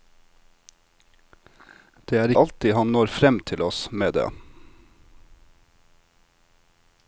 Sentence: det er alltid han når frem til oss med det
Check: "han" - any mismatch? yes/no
no